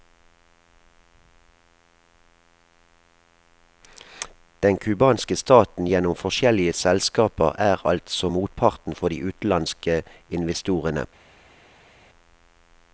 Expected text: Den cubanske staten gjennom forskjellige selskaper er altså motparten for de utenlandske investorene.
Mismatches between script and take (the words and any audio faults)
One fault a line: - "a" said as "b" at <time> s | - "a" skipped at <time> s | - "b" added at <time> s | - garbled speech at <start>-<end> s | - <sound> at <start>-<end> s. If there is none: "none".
none